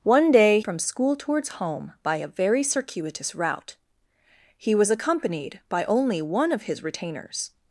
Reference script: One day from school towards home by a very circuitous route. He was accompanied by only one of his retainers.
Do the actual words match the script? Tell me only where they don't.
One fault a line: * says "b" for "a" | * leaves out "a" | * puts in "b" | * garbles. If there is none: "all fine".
all fine